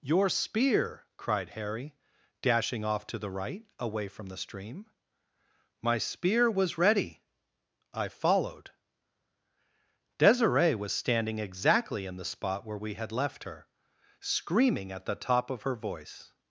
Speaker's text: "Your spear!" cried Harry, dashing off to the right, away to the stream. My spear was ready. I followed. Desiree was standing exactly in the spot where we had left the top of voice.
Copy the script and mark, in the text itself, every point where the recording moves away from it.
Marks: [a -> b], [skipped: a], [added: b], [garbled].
"Your spear!" cried Harry, dashing off to the right, away [to -> from] the stream. My spear was ready. I followed. Desiree was standing exactly in the spot where we had left [added: her screaming at] the top of [added: her] voice.